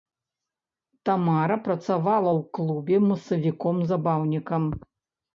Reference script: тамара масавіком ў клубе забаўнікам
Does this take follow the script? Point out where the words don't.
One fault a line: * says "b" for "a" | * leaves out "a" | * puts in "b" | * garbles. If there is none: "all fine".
* says "працавала" for "масавіком"
* puts in "масавіком"